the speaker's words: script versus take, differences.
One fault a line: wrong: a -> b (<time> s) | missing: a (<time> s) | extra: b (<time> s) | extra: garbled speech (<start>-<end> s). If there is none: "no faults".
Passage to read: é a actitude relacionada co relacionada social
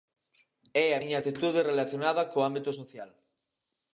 extra: miña (1.0 s)
wrong: relacionada -> ámbito (2.5 s)